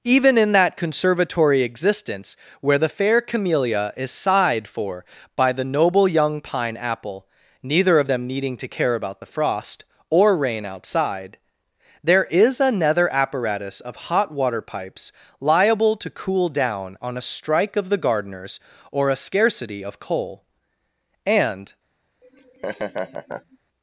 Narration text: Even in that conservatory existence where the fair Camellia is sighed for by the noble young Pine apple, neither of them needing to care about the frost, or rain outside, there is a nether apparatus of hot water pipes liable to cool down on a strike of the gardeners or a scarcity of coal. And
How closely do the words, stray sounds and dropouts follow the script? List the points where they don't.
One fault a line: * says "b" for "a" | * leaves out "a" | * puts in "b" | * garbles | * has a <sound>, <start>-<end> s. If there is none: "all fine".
* has a laugh, 22.2-23.6 s